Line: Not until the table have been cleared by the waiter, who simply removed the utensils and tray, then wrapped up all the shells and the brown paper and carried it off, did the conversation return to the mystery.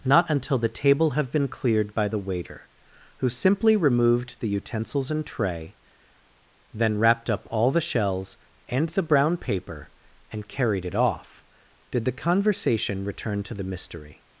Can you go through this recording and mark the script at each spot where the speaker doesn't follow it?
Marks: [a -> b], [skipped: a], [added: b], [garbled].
Not until the table have been cleared by the waiter, who simply removed the utensils and tray, then wrapped up all the shells and the brown paper and carried it off, did the conversation return to the mystery.